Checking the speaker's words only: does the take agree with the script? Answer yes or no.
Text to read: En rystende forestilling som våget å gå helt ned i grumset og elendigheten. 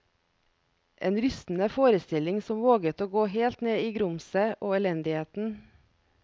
yes